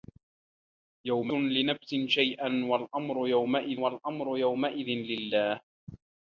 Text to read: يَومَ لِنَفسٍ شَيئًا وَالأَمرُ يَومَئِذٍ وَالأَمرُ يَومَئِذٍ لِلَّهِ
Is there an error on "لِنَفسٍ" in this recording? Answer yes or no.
no